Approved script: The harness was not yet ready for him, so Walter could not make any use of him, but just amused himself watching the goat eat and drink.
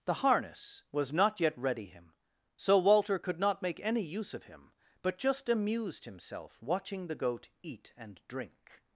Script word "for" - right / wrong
wrong